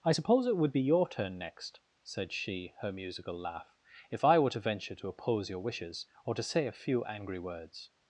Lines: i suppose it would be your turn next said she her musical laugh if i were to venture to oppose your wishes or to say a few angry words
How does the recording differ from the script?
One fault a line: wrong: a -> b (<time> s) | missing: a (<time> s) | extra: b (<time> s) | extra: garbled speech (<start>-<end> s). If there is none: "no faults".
no faults